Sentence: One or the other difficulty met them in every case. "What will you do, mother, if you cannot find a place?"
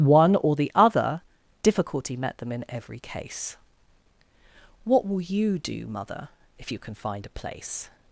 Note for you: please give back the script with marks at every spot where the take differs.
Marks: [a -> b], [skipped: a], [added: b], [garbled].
One or the other difficulty met them in every case. "What will you do, mother, if you [cannot -> can] find a place?"